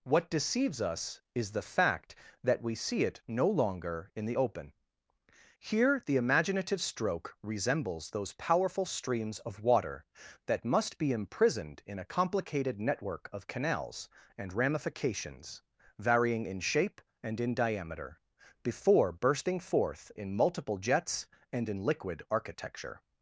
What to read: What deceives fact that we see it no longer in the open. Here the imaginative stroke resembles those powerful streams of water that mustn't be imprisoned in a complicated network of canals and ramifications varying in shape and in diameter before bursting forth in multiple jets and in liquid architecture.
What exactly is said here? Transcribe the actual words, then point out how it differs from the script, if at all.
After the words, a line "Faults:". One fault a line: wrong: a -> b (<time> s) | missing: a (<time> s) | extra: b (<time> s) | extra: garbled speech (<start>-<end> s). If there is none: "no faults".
What deceives us is the fact that we see it no longer in the open. Here the imaginative stroke resembles those powerful streams of water that must be imprisoned in a complicated network of canals and ramifications varying in shape and in diameter before bursting forth in multiple jets and in liquid architecture.
Faults:
extra: us is the (0.8 s)
wrong: mustn't -> must (10.6 s)